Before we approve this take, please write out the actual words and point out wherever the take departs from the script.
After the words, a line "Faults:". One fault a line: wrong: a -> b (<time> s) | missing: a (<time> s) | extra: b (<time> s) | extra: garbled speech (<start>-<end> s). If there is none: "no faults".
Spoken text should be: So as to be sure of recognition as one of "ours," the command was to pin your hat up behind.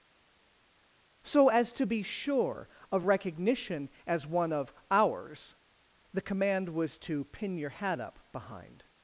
So as to be sure of recognition as one of "ours," the command was to pin your hat up behind.
Faults:
no faults